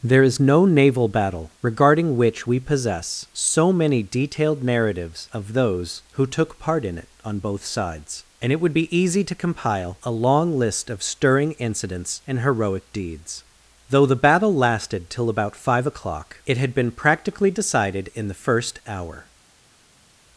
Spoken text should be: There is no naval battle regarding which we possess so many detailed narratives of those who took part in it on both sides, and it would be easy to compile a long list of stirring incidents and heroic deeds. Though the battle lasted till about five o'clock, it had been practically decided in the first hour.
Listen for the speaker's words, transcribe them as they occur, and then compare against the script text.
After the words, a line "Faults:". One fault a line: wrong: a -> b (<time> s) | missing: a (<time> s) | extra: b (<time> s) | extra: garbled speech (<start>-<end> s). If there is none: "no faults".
There is no naval battle regarding which we possess so many detailed narratives of those who took part in it on both sides, and it would be easy to compile a long list of stirring incidents and heroic deeds. Though the battle lasted till about five o'clock, it had been practically decided in the first hour.
Faults:
no faults